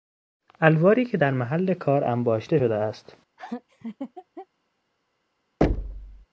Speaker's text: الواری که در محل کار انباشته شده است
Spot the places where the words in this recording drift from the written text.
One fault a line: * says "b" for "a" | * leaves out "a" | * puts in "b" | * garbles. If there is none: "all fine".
all fine